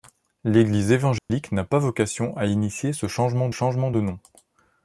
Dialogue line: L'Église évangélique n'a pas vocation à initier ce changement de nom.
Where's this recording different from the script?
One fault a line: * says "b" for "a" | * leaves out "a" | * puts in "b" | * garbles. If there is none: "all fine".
* puts in "changement"